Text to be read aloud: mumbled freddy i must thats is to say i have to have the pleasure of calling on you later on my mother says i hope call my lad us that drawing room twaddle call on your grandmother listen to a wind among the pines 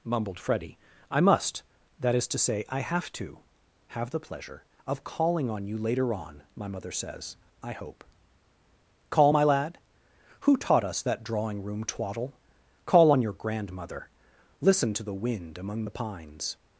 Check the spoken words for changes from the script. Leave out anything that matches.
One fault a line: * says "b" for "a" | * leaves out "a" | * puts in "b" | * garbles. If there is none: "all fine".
* says "that" for "thats"
* puts in "who taught"
* says "the" for "a"